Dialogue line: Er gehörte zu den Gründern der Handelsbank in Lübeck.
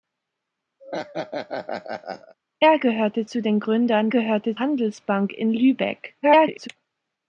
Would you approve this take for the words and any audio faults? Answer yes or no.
no